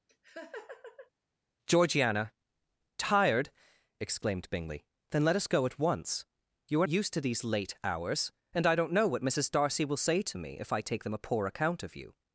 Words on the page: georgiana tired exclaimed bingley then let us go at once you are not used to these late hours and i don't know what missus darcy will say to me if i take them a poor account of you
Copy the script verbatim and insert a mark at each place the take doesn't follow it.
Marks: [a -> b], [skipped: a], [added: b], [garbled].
georgiana tired exclaimed bingley then let us go at once you are [skipped: not] used to these late hours and i don't know what missus darcy will say to me if i take them a poor account of you